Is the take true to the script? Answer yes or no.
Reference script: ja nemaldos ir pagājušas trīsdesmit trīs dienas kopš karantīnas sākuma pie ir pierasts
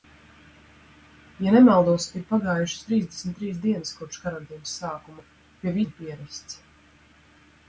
yes